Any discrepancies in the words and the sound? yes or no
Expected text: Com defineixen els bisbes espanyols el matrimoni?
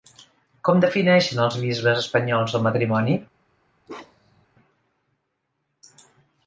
yes